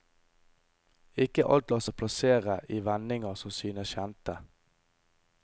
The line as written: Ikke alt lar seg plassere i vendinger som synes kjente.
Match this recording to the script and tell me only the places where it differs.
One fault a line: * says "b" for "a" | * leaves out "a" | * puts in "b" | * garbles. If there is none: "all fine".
all fine